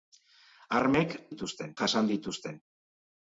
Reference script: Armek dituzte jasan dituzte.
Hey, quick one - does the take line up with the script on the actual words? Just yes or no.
yes